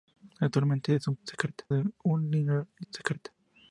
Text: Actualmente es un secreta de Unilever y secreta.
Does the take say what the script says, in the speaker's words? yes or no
yes